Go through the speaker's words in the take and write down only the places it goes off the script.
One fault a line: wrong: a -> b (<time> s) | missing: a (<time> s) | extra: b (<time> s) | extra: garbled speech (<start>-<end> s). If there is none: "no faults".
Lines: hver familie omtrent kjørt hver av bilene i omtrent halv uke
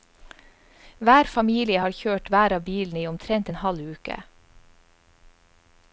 wrong: omtrent -> har (1.8 s)
extra: en (3.5 s)